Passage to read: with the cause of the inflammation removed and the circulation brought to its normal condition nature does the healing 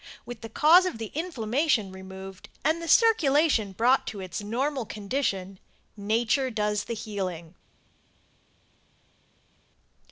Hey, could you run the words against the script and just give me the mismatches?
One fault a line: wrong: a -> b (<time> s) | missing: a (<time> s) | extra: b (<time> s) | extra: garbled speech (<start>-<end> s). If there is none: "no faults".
no faults